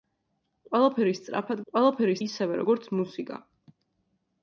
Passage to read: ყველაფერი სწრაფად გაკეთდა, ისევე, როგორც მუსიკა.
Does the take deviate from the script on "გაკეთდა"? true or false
true